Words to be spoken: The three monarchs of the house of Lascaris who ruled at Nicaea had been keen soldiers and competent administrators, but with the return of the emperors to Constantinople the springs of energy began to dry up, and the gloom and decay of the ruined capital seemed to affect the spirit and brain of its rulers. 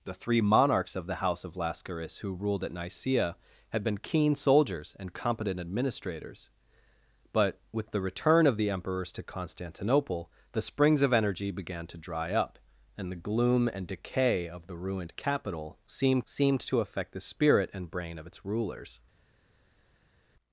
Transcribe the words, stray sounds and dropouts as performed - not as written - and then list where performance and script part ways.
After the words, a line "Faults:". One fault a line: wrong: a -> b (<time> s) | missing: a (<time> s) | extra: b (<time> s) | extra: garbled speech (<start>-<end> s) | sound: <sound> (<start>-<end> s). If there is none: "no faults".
The three monarchs of the house of Lascaris who ruled at Nicaea had been keen soldiers and competent administrators, but with the return of the emperors to Constantinople the springs of energy began to dry up, and the gloom and decay of the ruined capital seemed seemed to affect the spirit and brain of its rulers.
Faults:
extra: seemed (16.2 s)